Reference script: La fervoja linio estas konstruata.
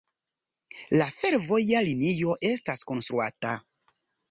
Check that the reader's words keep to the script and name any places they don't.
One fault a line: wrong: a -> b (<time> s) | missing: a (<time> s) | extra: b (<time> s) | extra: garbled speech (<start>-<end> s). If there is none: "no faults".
no faults